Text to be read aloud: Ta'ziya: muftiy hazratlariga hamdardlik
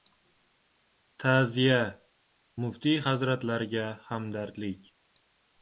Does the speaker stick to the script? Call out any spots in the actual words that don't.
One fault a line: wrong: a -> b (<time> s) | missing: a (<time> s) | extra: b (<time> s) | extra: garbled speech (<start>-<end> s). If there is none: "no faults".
no faults